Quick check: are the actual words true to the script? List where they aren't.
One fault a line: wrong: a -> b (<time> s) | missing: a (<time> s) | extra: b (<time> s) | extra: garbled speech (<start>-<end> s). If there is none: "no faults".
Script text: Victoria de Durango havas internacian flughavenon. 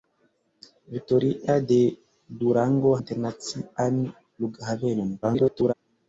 missing: havas (2.9 s)
extra: garbled speech (5.2-5.7 s)